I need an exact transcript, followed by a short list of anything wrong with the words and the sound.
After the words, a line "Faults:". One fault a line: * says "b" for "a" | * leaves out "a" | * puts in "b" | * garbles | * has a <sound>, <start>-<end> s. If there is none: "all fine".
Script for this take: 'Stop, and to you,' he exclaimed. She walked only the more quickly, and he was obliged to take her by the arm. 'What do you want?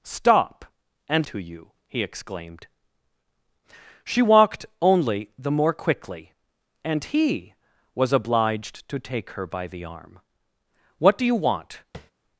'Stop, and to you,' he exclaimed. She walked only the more quickly, and he was obliged to take her by the arm. 'What do you want?
Faults:
* has a tap, 11.9-12.1 s